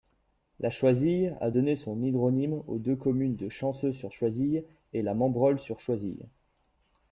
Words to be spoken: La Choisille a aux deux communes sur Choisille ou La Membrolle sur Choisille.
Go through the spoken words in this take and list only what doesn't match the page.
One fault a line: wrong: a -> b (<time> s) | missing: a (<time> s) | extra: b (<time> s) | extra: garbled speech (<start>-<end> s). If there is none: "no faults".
extra: donné son hydronyme (1.5 s)
extra: de Chanceaux (3.4 s)
wrong: ou -> et (4.9 s)